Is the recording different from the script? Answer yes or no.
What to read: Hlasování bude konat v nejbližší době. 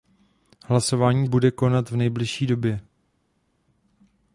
no